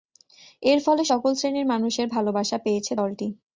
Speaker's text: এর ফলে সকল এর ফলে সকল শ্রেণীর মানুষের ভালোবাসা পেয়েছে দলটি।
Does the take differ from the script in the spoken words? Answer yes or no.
yes